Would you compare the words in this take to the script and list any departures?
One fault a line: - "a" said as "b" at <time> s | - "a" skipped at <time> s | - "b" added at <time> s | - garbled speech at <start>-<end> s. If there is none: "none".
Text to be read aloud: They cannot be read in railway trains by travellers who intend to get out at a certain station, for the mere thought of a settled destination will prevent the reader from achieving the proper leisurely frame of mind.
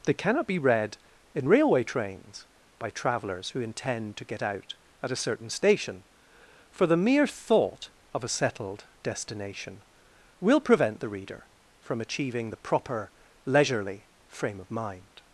none